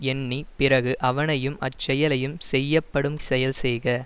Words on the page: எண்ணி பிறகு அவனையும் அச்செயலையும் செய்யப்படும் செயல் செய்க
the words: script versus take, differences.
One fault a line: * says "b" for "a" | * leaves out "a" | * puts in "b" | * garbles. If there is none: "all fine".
all fine